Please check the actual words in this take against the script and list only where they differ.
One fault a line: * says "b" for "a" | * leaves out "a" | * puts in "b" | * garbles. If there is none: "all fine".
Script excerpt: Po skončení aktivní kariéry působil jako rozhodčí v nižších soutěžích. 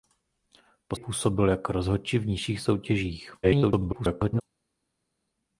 * leaves out "skončení aktivní kariéry"
* garbles